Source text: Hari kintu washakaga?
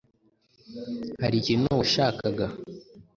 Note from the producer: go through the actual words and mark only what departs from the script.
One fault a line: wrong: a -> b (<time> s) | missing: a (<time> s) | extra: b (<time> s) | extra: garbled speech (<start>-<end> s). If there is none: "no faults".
no faults